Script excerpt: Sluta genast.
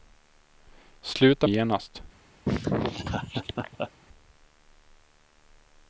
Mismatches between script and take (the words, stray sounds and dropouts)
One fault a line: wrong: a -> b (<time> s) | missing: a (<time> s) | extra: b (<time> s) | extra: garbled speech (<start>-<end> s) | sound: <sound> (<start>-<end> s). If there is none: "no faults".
sound: laugh (2.4-3.9 s)